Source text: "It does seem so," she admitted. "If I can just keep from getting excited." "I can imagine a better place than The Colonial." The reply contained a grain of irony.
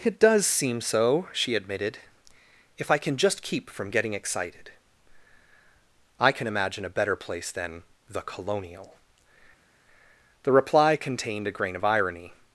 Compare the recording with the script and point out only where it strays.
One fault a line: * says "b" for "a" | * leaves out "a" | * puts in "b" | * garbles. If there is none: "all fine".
all fine